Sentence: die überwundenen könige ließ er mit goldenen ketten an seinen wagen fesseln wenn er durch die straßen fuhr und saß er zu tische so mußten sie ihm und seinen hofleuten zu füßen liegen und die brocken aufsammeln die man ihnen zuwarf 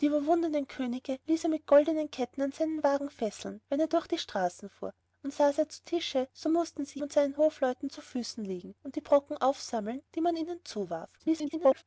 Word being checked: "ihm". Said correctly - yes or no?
no